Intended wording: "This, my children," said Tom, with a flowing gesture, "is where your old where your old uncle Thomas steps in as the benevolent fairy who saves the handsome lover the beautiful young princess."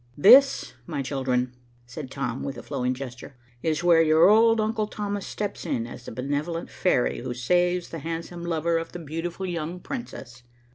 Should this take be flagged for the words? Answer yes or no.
yes